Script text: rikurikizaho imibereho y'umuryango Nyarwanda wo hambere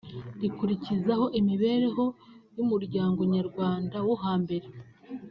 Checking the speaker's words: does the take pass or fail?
pass